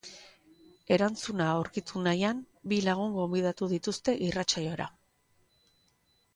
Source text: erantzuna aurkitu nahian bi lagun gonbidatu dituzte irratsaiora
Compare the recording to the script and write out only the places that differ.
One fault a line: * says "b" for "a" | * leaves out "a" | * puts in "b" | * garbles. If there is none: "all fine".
all fine